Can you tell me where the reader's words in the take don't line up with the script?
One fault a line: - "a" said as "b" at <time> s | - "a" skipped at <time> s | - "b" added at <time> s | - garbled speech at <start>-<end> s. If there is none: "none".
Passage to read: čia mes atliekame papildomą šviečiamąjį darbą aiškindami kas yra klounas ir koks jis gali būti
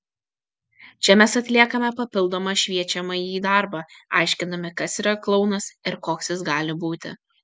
none